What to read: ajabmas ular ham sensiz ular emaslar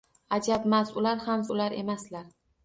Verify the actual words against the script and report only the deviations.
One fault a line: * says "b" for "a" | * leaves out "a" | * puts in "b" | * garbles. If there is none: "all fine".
* leaves out "sensiz"